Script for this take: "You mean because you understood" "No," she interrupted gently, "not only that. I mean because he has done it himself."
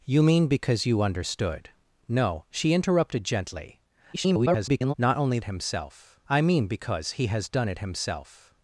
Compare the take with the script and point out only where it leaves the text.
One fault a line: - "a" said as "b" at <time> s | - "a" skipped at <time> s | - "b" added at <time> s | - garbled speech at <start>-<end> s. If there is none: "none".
- garbled speech at 4.1-4.9 s
- "that" said as "himself" at 5.4 s